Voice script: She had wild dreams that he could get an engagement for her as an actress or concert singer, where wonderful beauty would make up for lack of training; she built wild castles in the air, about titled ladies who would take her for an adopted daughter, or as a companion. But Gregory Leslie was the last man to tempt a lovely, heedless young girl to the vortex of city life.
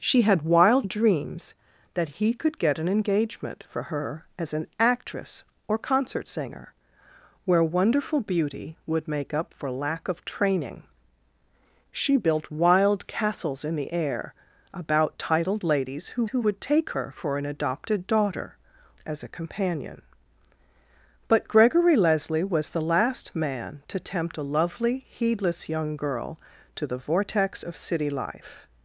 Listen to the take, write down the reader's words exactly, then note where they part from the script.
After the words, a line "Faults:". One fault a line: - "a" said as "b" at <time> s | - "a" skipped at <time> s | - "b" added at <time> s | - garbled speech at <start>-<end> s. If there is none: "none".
She had wild dreams that he could get an engagement for her as an actress or concert singer, where wonderful beauty would make up for lack of training; she built wild castles in the air, about titled ladies who who would take her for an adopted daughter, as a companion. But Gregory Leslie was the last man to tempt a lovely, heedless young girl to the vortex of city life.
Faults:
- "who" added at 16.3 s
- "or" skipped at 18.6 s